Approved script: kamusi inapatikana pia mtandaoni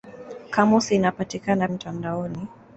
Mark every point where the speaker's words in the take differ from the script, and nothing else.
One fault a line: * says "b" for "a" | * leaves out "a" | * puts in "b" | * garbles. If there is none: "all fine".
* leaves out "pia"